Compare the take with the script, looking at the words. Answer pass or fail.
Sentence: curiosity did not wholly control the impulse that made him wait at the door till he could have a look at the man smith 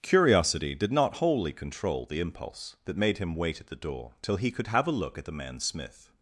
pass